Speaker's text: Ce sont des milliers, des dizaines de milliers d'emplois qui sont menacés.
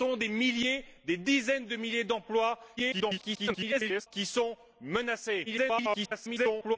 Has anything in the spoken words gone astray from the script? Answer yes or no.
yes